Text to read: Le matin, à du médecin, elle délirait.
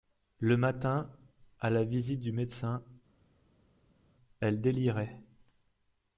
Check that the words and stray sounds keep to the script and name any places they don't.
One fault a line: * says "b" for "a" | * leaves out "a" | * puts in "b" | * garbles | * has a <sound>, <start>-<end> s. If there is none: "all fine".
* puts in "la visite"